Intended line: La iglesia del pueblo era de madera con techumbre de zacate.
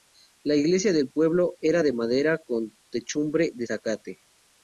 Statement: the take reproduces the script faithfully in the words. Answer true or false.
true